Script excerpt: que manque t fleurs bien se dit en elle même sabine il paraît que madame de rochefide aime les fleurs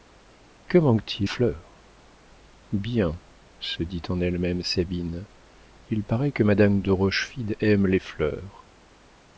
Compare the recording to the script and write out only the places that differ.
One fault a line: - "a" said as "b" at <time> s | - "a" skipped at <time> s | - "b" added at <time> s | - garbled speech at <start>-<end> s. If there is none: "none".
none